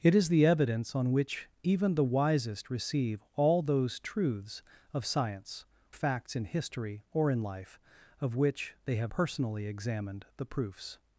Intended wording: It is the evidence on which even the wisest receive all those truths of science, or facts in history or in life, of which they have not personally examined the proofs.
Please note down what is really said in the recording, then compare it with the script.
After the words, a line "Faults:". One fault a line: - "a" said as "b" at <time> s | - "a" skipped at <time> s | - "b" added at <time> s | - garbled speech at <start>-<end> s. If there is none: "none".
It is the evidence on which even the wisest receive all those truths of science, facts in history or in life, of which they have personally examined the proofs.
Faults:
- "or" skipped at 5.7 s
- "not" skipped at 9.1 s